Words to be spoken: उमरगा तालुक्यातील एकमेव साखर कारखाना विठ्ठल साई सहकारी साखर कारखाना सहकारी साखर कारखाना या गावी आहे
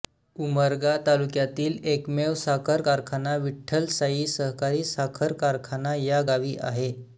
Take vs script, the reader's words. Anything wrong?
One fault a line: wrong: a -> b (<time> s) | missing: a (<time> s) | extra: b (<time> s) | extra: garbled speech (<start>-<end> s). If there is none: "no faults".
missing: सहकारी साखर कारखाना (6.0 s)